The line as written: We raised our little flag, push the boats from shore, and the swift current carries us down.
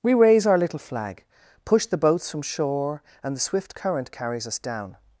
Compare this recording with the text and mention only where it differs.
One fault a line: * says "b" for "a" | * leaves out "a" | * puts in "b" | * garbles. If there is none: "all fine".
* says "raise" for "raised"